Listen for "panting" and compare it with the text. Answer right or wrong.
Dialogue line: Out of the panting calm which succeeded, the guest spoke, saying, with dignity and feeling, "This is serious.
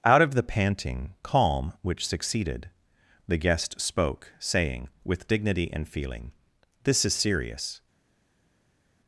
right